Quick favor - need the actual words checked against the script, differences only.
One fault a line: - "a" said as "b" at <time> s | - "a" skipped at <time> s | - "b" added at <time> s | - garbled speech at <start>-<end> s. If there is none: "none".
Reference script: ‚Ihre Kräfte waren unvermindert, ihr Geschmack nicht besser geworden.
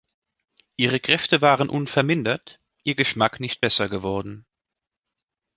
none